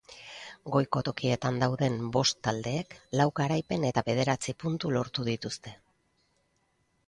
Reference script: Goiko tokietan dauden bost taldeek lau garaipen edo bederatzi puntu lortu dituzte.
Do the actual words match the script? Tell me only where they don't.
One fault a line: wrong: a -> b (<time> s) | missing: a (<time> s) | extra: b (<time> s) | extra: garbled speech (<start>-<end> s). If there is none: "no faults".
wrong: edo -> eta (3.9 s)